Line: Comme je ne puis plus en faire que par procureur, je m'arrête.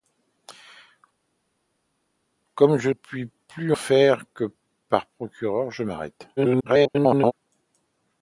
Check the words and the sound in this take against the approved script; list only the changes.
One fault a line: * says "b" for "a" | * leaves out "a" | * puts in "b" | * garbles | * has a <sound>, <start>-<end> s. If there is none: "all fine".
* leaves out "ne"
* leaves out "en"
* garbles